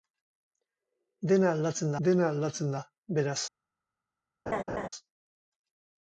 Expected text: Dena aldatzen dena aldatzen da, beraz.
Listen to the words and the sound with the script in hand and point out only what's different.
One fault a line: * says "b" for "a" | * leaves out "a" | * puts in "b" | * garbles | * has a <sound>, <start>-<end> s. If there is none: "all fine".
* has a laugh, 4.5-4.9 s